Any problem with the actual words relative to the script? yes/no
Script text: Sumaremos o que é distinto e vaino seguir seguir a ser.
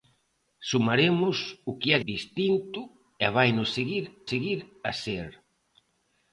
no